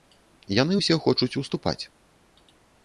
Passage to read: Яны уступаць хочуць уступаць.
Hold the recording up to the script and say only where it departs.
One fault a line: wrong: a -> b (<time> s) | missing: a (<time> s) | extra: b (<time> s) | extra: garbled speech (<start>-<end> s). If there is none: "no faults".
wrong: уступаць -> ўсе (0.8 s)